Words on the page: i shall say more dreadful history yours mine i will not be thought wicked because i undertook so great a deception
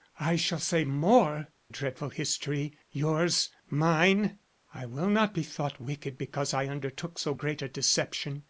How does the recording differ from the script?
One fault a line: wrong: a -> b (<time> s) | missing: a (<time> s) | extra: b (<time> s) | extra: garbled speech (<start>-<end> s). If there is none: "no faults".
no faults